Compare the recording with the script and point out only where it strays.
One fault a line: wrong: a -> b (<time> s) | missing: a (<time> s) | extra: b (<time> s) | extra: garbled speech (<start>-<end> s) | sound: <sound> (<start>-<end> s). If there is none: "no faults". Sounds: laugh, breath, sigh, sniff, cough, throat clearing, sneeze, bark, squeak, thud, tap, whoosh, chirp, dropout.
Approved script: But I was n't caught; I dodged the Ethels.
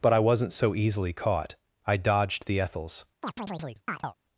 extra: so easily (0.5 s)
sound: chirp (3.2-4.1 s)